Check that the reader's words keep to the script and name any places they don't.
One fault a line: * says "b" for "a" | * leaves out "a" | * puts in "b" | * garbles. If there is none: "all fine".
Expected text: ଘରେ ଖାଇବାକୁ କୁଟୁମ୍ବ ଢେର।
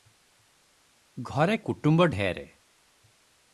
* leaves out "ଖାଇବାକୁ"